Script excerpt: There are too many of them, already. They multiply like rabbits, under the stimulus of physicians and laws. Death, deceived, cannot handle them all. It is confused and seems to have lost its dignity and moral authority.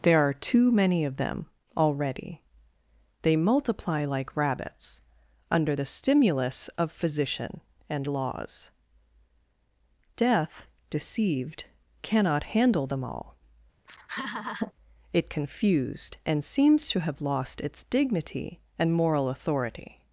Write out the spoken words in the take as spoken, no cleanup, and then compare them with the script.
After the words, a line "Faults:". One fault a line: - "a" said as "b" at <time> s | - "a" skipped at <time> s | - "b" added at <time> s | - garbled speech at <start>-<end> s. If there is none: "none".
There are too many of them, already. They multiply like rabbits, under the stimulus of physician and laws. Death, deceived, cannot handle them all. It confused and seems to have lost its dignity and moral authority.
Faults:
- "physicians" said as "physician" at 6.9 s
- "is" skipped at 15.3 s